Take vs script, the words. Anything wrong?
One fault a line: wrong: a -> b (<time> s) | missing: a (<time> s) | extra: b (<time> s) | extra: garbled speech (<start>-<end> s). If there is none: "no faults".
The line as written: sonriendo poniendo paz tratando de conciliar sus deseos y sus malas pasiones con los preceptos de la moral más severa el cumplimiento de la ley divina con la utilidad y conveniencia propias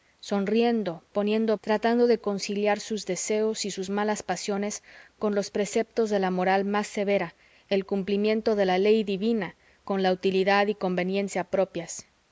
missing: paz (1.6 s)